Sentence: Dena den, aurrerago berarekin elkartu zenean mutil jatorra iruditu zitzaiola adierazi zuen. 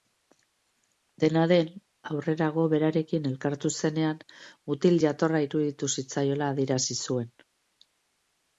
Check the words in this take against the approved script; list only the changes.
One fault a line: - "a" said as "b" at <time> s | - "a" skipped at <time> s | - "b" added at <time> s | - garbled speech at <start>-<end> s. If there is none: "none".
none